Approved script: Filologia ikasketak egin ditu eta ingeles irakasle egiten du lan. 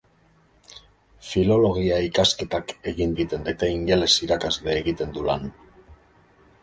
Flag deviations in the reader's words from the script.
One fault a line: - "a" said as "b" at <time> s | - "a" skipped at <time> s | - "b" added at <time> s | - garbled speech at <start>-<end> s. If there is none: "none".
- "ditu" said as "egiten" at 3.2 s